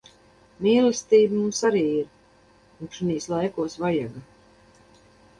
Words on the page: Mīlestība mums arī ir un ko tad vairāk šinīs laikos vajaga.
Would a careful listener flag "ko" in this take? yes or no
yes